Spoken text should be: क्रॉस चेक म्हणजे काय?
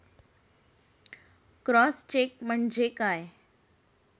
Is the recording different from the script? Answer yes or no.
no